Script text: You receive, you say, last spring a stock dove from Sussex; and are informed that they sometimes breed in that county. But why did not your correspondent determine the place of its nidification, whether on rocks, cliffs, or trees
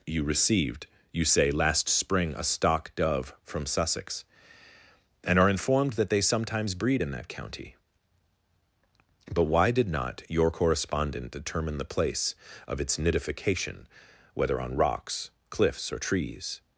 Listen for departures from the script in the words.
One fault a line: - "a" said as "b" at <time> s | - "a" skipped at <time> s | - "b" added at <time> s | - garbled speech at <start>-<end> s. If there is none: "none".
- "receive" said as "received" at 0.2 s